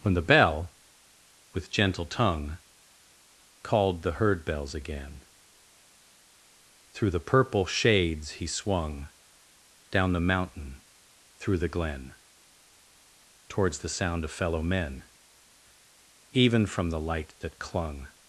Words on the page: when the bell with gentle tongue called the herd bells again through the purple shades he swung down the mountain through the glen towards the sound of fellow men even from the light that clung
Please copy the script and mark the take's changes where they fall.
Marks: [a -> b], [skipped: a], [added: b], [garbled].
when the bell with gentle tongue called the herd bells again through the purple shades he swung down the mountain through the glen towards the sound of fellow men even from the light that clung